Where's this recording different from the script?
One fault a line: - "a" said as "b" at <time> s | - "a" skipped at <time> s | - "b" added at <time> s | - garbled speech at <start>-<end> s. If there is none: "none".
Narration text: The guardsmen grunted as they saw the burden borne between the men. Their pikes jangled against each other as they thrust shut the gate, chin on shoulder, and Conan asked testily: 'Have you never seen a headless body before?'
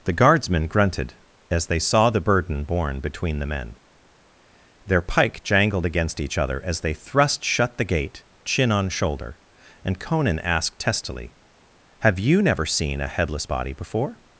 - "pikes" said as "pike" at 5.0 s